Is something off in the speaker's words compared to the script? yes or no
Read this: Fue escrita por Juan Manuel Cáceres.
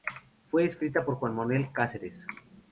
no